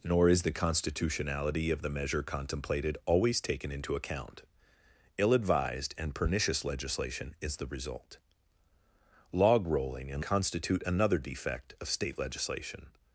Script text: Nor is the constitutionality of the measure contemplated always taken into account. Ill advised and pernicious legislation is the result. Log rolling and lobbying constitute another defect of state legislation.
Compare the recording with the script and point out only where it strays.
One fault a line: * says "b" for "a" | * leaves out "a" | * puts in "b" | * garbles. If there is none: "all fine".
* leaves out "lobbying"